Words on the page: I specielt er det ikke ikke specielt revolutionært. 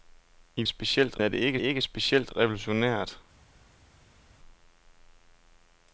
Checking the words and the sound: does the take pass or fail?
pass